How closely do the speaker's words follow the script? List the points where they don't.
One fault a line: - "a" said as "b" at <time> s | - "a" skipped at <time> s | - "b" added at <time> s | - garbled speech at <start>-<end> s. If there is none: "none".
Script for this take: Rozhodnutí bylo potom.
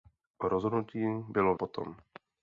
none